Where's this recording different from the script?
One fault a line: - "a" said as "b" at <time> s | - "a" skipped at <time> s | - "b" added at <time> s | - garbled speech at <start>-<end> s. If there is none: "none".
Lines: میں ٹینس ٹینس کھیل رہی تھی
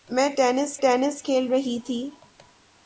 none